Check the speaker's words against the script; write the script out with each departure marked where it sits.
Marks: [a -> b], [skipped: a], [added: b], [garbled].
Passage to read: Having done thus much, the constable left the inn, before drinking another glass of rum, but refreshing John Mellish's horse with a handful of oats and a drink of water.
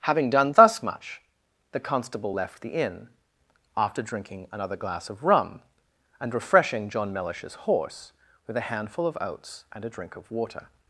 Having done thus much, the constable left the inn, [before -> after] drinking another glass of rum, [but -> and] refreshing John Mellish's horse with a handful of oats and a drink of water.